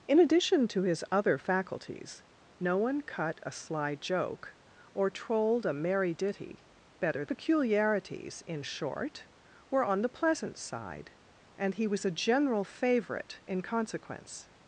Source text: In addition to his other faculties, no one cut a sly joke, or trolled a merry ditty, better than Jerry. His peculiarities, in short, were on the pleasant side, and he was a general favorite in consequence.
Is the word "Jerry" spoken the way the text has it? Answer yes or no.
no